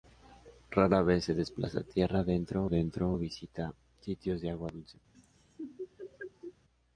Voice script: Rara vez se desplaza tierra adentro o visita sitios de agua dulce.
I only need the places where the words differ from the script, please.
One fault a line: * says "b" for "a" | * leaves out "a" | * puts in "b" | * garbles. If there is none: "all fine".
* puts in "adentro"